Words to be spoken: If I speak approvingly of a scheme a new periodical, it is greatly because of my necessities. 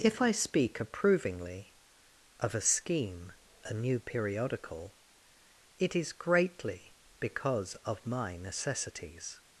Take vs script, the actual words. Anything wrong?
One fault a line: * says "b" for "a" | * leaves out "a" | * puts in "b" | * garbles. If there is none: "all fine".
all fine